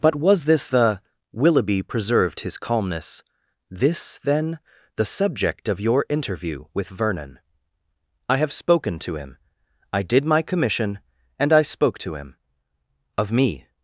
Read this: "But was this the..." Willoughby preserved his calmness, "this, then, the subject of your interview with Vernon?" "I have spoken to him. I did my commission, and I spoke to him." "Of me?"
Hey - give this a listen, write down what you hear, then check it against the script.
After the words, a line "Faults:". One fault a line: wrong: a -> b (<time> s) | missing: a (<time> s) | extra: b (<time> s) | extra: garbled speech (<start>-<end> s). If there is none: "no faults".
"But was this the..." Willoughby preserved his calmness, "this, then, the subject of your interview with Vernon?" "I have spoken to him. I did my commission, and I spoke to him." "Of me?"
Faults:
no faults